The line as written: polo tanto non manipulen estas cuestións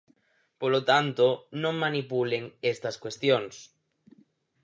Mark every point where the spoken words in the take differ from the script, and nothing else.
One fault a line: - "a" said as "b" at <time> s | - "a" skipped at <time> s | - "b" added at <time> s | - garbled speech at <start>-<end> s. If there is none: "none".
none